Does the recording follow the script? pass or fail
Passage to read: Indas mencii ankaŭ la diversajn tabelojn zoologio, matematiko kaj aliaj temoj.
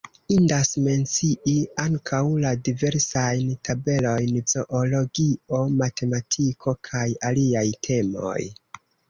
pass